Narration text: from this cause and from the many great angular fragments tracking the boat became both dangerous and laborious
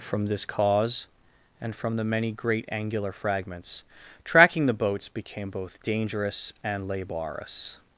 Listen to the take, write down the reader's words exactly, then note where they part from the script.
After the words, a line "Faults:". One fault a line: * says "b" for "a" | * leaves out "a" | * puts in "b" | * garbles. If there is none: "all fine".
from this cause and from the many great angular fragments tracking the boats became both dangerous and laborious
Faults:
* says "boats" for "boat"